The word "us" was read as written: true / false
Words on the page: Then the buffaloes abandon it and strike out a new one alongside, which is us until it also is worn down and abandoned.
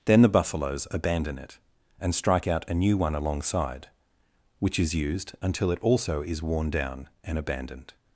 false